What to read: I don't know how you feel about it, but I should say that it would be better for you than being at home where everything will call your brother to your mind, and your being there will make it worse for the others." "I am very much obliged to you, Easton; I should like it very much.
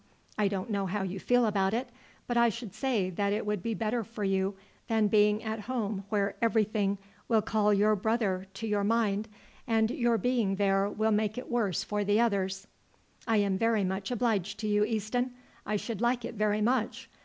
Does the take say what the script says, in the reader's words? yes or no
yes